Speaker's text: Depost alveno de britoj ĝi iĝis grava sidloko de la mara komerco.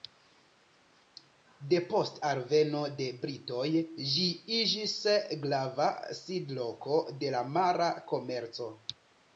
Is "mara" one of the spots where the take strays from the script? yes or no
no